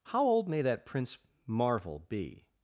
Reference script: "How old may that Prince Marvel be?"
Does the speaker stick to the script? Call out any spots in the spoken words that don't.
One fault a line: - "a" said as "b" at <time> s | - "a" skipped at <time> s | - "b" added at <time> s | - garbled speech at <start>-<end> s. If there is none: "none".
none